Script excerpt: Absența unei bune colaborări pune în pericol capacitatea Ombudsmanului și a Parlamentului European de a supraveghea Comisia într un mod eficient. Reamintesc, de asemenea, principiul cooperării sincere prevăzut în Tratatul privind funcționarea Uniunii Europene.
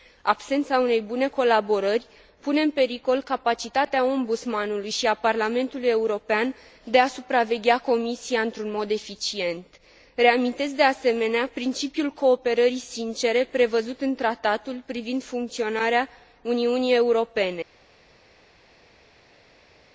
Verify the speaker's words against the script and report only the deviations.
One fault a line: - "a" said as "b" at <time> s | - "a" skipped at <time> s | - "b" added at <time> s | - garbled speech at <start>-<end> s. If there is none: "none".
none